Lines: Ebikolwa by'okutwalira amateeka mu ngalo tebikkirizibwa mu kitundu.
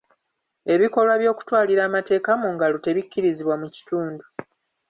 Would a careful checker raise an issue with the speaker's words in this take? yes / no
no